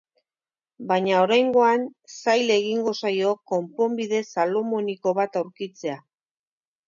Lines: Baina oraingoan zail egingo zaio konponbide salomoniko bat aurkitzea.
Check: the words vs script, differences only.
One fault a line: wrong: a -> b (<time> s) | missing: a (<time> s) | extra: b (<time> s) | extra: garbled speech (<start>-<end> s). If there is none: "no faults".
no faults